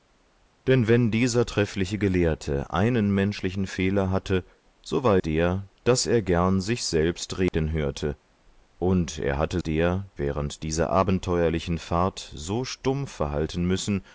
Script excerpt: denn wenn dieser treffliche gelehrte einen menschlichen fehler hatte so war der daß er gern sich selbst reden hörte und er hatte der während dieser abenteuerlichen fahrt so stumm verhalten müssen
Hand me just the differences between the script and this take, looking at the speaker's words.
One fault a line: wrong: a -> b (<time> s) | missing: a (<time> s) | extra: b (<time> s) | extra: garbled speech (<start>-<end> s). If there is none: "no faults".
no faults